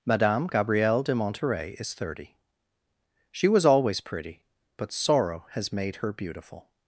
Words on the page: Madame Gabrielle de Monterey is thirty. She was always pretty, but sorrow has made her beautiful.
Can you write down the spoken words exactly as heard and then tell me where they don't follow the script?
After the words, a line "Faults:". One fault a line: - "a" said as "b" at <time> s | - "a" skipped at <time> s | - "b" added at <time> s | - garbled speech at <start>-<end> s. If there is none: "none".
Madame Gabrielle de Monterey is thirty. She was always pretty, but sorrow has made her beautiful.
Faults:
none